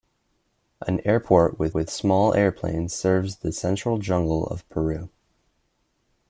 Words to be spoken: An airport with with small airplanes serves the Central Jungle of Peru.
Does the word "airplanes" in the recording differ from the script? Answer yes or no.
no